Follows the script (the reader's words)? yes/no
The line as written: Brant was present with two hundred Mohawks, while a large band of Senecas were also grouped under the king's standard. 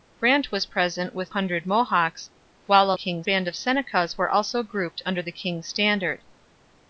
no